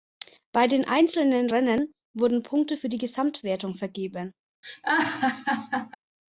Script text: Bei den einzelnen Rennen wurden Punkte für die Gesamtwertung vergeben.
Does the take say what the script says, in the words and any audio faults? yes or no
no